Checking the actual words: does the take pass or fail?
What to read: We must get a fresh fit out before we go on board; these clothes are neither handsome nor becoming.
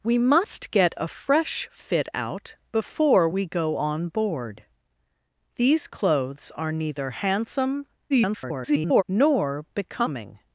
fail